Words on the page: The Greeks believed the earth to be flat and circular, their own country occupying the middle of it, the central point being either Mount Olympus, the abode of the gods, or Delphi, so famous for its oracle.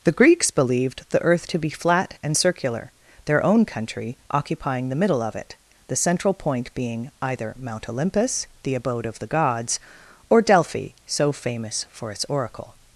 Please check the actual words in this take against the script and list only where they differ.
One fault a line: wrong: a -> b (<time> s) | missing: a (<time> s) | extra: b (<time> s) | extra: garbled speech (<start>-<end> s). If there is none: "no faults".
no faults